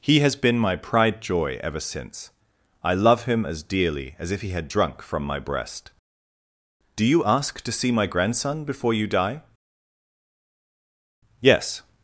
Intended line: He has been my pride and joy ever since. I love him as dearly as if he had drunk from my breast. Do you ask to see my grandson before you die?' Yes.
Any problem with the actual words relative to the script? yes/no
yes